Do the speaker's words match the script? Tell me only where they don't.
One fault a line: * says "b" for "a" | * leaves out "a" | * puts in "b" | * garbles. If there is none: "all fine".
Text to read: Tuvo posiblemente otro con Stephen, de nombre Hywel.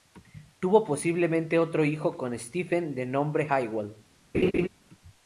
* puts in "hijo"